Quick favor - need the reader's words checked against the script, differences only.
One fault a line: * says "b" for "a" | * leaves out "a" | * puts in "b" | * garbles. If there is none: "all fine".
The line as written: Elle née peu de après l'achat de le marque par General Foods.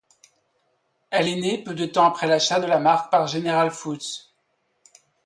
* puts in "est"
* puts in "temps"
* says "la" for "le"